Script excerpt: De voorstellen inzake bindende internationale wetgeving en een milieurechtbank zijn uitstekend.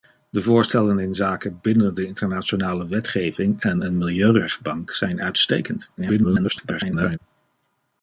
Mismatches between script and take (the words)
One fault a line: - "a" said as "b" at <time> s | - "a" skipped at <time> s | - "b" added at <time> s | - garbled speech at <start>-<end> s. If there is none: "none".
- garbled speech at 6.0-7.2 s